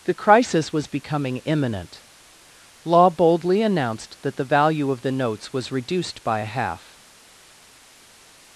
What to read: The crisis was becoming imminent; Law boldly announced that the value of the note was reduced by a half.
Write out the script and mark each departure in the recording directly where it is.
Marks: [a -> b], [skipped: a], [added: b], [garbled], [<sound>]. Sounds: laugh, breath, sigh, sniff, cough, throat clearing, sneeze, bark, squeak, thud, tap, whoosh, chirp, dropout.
The crisis was becoming imminent; Law boldly announced that the value of the [note -> notes] was reduced by a half.